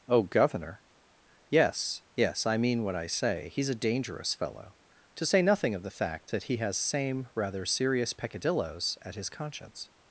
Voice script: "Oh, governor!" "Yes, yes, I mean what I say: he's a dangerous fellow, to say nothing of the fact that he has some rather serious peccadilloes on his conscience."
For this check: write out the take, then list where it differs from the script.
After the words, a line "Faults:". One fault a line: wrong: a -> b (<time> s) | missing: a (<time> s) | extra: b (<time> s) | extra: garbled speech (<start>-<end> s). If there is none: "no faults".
"Oh, governor!" "Yes, yes, I mean what I say: he's a dangerous fellow, to say nothing of the fact that he has same rather serious peccadilloes at his conscience."
Faults:
wrong: some -> same (6.8 s)
wrong: on -> at (9.0 s)